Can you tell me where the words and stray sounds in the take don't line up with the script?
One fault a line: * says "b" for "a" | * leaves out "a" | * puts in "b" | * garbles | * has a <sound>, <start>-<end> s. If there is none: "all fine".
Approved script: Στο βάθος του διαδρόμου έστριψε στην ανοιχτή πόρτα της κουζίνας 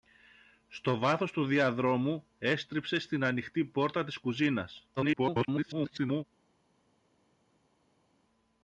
* garbles